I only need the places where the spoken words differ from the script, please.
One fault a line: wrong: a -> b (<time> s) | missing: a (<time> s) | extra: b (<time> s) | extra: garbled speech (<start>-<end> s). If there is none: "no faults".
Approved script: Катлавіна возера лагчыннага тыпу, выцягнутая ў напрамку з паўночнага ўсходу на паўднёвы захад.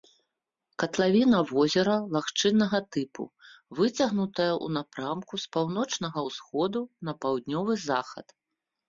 no faults